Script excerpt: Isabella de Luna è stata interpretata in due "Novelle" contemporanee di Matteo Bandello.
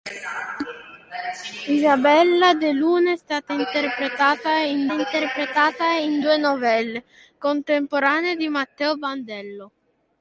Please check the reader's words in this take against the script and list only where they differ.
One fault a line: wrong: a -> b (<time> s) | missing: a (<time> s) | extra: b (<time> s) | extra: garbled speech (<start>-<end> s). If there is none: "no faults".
extra: interpretata in (4.9 s)